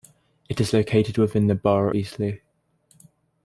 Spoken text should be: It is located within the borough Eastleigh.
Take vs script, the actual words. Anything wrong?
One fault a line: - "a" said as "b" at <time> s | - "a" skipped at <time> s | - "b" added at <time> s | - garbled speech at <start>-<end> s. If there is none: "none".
none